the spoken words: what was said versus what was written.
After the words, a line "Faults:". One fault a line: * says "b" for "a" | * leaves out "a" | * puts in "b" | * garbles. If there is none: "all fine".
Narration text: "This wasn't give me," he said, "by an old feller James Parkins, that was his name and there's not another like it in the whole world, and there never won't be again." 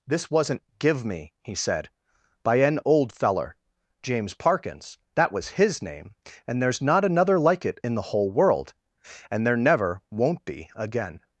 "This wasn't give me," he said, "by an old feller James Parkins, that was his name and there's not another like it in the whole world, and there never won't be again."
Faults:
all fine